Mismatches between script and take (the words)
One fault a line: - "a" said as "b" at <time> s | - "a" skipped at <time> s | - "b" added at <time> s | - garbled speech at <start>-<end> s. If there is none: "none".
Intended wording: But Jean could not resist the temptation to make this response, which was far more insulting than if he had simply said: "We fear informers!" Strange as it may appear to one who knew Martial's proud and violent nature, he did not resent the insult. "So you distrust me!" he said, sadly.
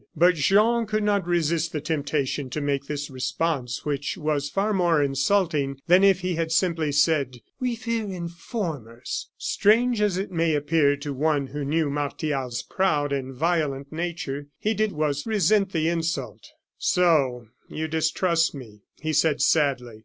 - "not" said as "was" at 14.9 s